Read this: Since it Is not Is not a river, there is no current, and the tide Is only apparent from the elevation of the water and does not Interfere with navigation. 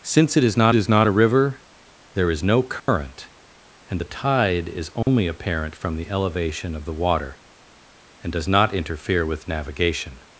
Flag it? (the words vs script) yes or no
no